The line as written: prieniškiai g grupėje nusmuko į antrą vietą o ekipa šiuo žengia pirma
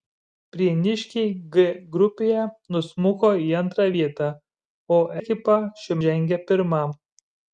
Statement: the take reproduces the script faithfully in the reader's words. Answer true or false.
true